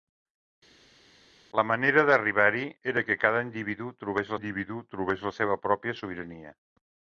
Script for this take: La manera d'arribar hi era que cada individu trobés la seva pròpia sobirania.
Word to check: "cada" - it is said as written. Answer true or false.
true